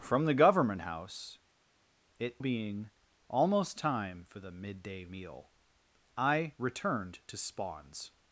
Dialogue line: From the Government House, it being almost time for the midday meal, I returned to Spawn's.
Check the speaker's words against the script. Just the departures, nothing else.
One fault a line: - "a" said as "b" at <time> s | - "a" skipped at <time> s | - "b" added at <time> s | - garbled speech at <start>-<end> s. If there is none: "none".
none